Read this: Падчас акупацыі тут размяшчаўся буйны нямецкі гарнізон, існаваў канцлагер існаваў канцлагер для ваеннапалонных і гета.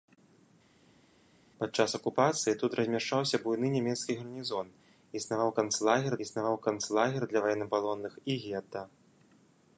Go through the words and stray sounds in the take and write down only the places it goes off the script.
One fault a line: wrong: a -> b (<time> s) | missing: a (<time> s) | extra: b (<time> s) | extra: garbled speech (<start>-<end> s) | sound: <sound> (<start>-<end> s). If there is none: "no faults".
no faults